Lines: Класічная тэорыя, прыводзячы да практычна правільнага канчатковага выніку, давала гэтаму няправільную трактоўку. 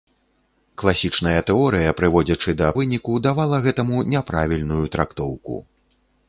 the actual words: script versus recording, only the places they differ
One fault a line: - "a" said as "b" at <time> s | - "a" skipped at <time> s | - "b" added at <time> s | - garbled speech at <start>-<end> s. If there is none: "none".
- "практычна правільнага канчатковага" skipped at 2.7 s